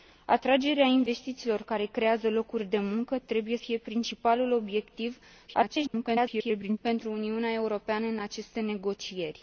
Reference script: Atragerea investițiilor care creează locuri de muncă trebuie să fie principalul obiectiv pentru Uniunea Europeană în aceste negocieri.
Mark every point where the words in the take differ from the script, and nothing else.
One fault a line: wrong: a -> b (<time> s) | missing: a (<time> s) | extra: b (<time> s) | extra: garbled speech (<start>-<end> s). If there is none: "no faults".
missing: să (3.6 s)
extra: garbled speech (5.5-6.8 s)